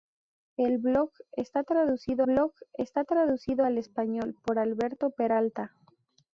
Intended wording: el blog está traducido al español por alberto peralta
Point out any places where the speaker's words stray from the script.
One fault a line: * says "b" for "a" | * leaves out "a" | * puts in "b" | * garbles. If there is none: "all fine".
* puts in "blog está traducido"